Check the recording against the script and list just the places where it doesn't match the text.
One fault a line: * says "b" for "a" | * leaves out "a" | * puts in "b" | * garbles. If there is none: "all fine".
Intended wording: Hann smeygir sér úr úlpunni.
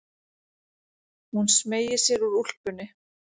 * says "Hún" for "Hann"